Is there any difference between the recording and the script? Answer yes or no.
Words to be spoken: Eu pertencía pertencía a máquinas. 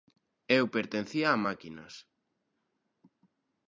yes